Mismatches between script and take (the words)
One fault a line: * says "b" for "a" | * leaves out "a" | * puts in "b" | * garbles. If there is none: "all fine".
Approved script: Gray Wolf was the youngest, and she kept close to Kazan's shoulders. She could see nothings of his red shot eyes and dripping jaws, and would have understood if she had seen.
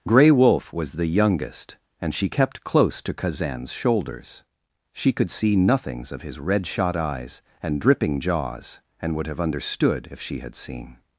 all fine